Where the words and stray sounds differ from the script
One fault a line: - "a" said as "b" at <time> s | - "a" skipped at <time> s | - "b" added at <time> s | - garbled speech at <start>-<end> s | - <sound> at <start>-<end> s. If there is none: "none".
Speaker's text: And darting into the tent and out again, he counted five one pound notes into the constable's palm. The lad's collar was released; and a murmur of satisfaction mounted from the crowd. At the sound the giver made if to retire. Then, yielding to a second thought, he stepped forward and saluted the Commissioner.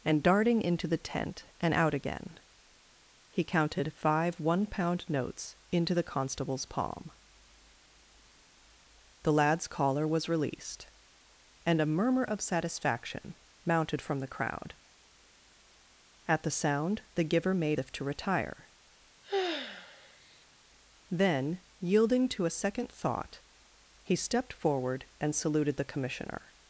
- sigh at 19.2-20.5 s